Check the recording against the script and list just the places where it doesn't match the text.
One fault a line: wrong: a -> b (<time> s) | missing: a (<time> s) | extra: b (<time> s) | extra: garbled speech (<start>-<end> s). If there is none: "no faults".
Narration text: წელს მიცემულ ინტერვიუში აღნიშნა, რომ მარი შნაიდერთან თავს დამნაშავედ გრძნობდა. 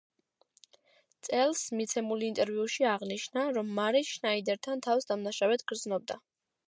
no faults